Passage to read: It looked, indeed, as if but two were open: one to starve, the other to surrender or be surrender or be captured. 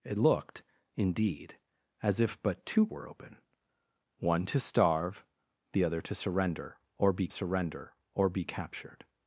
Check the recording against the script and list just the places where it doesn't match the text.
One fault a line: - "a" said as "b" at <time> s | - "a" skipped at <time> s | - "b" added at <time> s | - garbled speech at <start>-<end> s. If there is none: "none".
none